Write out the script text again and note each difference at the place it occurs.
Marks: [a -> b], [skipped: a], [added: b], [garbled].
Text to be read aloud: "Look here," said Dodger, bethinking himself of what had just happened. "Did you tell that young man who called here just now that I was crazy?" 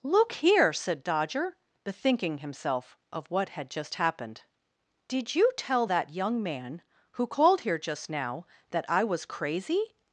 "Look here," said Dodger, bethinking himself of what had just happened. "Did you tell that young man who called here just now that I was crazy?"